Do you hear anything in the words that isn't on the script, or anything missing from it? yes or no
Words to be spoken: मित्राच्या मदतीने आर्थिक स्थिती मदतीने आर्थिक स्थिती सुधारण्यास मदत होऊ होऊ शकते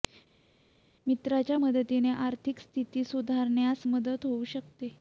yes